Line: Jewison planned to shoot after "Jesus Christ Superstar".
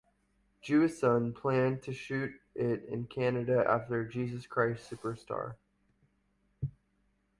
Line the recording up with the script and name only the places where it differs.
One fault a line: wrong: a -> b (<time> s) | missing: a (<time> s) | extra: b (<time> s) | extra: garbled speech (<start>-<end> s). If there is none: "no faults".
extra: it in Canada (2.5 s)